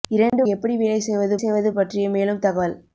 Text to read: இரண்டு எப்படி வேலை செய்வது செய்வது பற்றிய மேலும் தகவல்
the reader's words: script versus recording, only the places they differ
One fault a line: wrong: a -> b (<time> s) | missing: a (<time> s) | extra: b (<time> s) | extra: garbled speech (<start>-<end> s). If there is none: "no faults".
no faults